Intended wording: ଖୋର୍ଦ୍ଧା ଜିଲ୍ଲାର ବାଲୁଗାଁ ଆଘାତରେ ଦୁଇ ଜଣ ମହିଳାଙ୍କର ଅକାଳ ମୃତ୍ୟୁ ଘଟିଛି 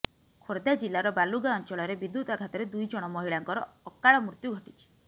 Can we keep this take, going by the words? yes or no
no